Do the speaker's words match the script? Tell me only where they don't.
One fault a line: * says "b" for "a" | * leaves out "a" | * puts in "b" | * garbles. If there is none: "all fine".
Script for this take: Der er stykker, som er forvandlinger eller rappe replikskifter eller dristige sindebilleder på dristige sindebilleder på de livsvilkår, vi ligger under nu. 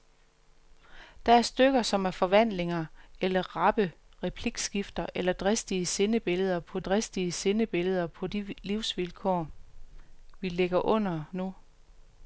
all fine